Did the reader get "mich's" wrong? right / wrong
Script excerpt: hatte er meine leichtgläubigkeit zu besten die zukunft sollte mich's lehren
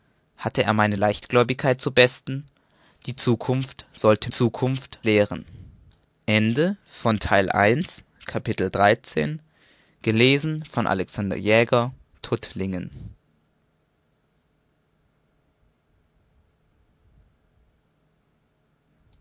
wrong